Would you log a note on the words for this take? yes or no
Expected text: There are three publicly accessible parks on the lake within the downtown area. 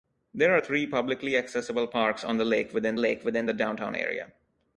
yes